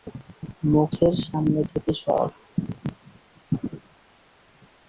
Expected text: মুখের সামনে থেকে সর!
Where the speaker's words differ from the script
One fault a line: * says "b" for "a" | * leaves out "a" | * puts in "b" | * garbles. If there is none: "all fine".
all fine